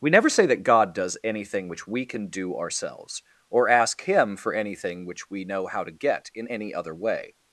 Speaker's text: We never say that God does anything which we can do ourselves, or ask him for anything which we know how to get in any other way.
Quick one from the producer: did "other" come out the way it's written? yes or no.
yes